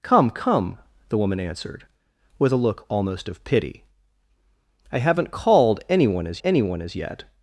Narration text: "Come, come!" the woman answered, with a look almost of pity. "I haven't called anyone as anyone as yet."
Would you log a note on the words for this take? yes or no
no